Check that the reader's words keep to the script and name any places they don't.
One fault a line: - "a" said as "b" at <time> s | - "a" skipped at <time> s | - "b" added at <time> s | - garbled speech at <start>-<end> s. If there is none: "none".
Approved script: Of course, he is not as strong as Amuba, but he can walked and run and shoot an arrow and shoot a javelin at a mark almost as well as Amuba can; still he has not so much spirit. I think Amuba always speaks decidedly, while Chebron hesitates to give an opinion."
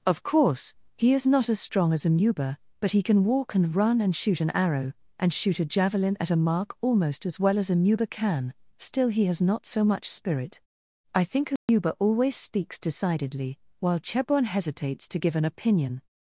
- "walked" said as "walk" at 3.2 s